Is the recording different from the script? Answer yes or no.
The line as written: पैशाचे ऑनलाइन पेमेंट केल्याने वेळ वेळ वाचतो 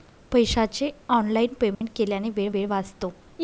no